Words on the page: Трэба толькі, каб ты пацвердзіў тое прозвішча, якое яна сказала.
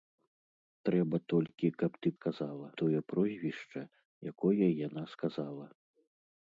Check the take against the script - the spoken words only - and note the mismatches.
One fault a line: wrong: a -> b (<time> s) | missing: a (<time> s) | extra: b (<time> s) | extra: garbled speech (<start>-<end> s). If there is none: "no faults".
wrong: пацвердзіў -> сказала (2.2 s)